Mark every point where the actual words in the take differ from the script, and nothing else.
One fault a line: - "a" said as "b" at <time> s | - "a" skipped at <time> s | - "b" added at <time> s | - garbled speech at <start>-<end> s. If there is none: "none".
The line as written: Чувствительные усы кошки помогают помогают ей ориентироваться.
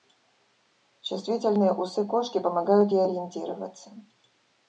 - "помогают" skipped at 2.9 s